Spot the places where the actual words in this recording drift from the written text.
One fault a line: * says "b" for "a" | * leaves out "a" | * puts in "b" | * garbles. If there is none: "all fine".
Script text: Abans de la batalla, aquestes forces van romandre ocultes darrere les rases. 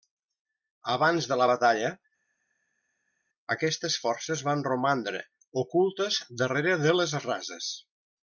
* puts in "de"